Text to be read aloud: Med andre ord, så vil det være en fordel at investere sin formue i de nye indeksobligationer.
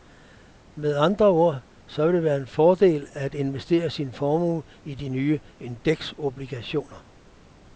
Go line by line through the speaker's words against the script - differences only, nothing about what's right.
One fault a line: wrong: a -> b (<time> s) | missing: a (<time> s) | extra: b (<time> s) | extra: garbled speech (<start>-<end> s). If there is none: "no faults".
no faults